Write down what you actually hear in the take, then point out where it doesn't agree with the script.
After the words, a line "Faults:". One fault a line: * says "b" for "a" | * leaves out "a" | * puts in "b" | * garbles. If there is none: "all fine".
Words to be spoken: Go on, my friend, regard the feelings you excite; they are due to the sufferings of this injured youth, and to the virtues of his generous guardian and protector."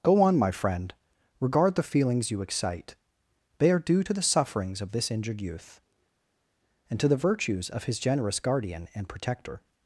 Go on, my friend, regard the feelings you excite; they are due to the sufferings of this injured youth, and to the virtues of his generous guardian and protector."
Faults:
all fine